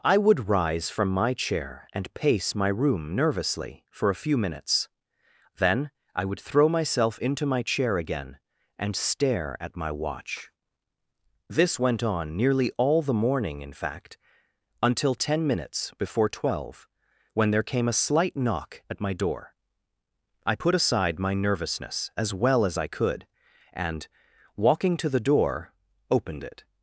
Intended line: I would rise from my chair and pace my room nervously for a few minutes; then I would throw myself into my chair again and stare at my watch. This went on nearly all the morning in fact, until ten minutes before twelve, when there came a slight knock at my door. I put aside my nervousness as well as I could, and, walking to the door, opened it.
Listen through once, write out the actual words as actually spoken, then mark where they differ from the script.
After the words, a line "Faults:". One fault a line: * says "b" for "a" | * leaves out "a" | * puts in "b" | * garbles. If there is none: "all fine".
I would rise from my chair and pace my room nervously for a few minutes; then I would throw myself into my chair again and stare at my watch. This went on nearly all the morning in fact, until ten minutes before twelve, when there came a slight knock at my door. I put aside my nervousness as well as I could, and, walking to the door, opened it.
Faults:
all fine